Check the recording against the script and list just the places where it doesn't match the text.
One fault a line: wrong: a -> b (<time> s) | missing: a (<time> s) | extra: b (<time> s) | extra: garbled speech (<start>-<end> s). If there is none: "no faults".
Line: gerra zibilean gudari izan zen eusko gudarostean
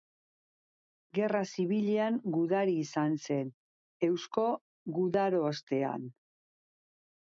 no faults